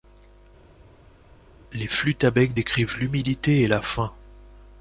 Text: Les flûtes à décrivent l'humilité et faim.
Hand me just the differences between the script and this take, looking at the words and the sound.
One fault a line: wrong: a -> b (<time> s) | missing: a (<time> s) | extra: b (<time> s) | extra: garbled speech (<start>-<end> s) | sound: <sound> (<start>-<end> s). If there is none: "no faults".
extra: bec (2.3 s)
extra: la (3.7 s)